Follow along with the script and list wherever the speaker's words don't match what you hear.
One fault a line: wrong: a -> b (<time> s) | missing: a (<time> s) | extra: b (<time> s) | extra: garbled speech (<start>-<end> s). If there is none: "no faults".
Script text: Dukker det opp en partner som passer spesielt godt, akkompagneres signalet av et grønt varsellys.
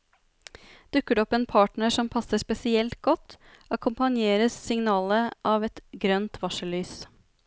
no faults